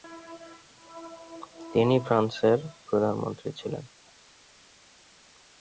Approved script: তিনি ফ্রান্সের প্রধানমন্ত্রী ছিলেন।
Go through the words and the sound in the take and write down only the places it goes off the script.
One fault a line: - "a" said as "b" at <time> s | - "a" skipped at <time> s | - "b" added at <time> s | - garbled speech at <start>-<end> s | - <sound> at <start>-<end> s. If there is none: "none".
none